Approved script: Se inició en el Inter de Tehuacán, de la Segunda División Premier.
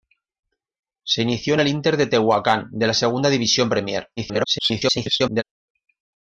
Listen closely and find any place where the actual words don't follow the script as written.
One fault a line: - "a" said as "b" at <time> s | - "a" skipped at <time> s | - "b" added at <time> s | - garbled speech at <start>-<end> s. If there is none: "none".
- garbled speech at 4.2-5.4 s